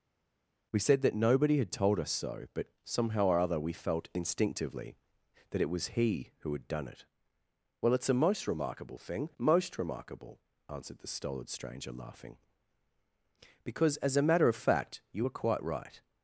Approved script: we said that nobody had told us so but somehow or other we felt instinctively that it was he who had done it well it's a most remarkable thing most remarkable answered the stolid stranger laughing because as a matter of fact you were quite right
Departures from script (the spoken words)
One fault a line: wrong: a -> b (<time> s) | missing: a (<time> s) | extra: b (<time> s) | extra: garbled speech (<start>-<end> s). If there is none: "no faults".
no faults